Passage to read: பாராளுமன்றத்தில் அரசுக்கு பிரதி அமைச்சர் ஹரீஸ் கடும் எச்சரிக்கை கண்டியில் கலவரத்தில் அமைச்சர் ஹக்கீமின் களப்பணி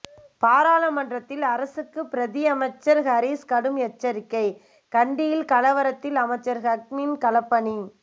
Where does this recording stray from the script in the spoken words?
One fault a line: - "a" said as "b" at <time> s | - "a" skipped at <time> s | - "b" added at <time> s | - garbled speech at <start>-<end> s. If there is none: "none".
none